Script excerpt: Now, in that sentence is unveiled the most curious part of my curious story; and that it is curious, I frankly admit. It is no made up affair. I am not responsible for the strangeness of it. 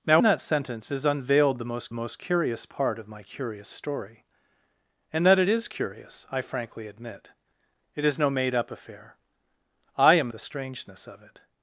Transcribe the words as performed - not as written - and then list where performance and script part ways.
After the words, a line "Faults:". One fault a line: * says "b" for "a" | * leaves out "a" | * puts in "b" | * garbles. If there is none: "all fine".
Now, that sentence is unveiled the most most curious part of my curious story; and that it is curious, I frankly admit. It is no made up affair. I am the strangeness of it.
Faults:
* leaves out "in"
* puts in "most"
* leaves out "not responsible for"